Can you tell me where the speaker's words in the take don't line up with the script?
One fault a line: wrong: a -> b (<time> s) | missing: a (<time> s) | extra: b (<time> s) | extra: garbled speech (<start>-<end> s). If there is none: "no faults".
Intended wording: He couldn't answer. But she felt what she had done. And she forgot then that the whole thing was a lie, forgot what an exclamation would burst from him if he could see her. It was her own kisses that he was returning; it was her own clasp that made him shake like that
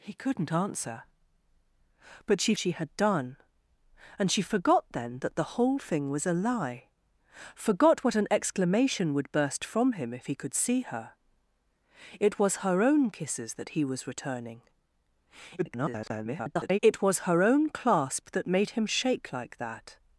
missing: felt what (2.5 s)
extra: garbled speech (15.6-16.8 s)